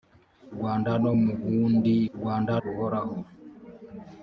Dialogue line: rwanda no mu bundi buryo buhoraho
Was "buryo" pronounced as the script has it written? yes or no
no